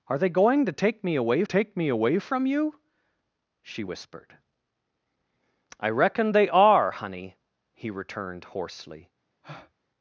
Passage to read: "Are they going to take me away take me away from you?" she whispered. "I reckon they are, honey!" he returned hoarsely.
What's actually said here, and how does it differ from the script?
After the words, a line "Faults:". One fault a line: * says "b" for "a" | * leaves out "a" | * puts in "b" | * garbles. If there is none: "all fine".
"Are they going to take me away take me away from you?" she whispered. "I reckon they are, honey!" he returned hoarsely.
Faults:
all fine